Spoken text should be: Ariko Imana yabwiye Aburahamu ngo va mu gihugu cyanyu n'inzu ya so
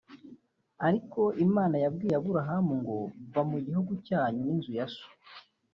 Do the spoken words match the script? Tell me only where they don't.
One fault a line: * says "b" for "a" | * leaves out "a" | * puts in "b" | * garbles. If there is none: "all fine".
all fine